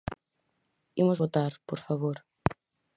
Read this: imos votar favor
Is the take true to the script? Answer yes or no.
no